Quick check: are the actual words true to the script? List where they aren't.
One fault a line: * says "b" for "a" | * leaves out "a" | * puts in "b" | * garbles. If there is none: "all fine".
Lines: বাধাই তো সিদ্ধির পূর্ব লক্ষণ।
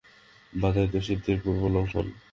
all fine